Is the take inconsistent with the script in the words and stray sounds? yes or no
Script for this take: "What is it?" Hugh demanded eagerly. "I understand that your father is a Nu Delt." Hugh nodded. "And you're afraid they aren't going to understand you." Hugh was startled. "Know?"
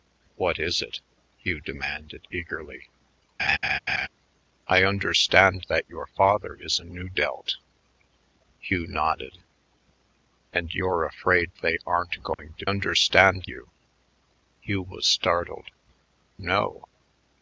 yes